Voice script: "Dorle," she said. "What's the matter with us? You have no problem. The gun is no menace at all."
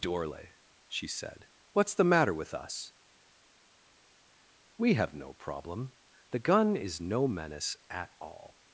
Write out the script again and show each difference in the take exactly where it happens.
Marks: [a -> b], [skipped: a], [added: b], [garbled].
"Dorle," she said. "What's the matter with us? [You -> We] have no problem. The gun is no menace at all."